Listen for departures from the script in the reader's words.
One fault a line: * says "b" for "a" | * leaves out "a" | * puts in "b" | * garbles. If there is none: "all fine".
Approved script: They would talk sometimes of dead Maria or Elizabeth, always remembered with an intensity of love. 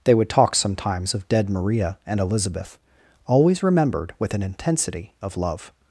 * says "and" for "or"